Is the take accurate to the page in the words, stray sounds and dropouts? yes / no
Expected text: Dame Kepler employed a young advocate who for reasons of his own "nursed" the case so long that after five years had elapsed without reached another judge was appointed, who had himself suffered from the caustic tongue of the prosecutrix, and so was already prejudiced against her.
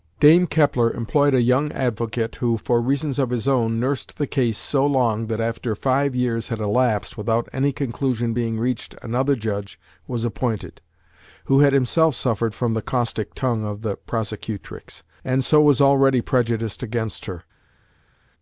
no